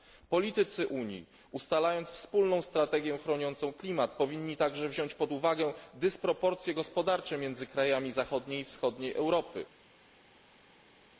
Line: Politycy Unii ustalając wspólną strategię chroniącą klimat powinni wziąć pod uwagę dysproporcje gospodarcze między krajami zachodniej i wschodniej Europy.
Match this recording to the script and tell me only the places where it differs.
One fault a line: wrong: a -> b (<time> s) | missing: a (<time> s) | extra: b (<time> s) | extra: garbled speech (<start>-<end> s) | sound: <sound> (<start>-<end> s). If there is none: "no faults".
extra: także (4.6 s)